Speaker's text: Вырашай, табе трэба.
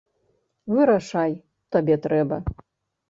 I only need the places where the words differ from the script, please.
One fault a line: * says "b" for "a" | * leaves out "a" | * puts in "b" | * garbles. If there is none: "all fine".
all fine